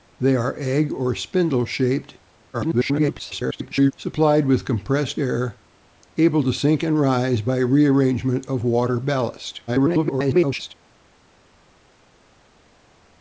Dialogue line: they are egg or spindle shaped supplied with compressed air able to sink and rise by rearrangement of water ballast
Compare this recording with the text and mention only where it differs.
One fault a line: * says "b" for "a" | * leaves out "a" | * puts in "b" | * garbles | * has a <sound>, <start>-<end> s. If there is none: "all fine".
* garbles
* garbles